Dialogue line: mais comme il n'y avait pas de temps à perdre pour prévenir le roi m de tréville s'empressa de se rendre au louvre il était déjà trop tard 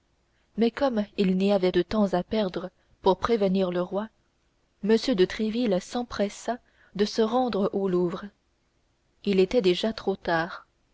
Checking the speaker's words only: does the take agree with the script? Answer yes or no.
no